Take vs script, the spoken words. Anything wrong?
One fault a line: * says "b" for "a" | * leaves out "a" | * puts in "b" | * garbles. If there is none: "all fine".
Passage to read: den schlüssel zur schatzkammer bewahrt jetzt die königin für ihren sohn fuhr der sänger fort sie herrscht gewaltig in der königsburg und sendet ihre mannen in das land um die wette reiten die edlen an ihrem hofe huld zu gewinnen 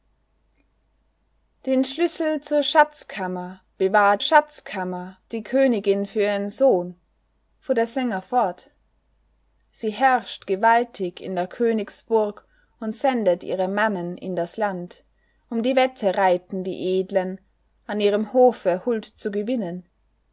* says "schatzkammer" for "jetzt"